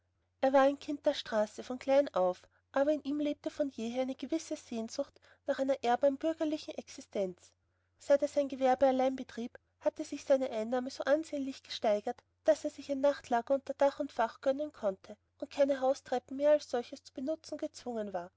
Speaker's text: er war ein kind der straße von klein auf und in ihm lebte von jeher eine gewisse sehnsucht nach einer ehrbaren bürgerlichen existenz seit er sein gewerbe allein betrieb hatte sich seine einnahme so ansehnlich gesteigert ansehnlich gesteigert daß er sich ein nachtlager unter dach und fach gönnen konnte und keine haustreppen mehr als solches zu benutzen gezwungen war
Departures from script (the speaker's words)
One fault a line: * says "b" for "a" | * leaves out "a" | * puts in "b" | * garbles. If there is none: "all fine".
* says "aber" for "und"
* leaves out "ansehnlich gesteigert"